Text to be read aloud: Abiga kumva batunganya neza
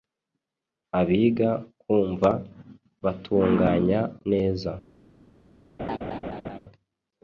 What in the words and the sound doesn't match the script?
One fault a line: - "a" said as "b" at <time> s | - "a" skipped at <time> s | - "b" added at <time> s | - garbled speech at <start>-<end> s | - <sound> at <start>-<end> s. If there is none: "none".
- laugh at 5.8-6.6 s